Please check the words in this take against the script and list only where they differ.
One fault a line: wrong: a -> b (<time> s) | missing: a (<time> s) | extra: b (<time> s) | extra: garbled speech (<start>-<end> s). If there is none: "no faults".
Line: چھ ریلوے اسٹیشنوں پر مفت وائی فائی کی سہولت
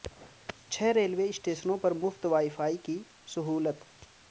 no faults